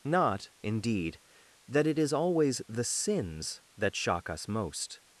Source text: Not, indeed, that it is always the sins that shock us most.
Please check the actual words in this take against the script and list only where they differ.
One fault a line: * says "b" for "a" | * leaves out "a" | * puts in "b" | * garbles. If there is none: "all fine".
all fine